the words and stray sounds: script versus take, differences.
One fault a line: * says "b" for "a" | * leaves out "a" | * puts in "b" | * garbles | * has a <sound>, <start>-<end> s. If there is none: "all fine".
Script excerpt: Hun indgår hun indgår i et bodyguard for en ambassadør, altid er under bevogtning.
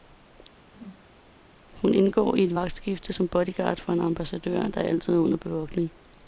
* has a whoosh, 0.6-1.2 s
* says "i et vagtskifte som" for "hun indgår i et"
* puts in "der"